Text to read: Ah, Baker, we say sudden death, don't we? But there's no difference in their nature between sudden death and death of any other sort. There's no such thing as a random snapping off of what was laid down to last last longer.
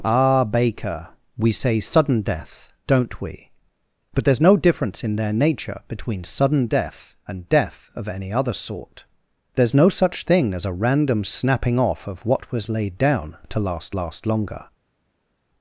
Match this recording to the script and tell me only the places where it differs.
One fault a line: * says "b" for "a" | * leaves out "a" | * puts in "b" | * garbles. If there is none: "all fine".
all fine